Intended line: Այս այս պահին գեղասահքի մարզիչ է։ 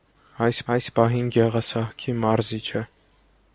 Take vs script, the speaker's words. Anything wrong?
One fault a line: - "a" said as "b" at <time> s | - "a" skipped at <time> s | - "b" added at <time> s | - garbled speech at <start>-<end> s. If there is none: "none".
none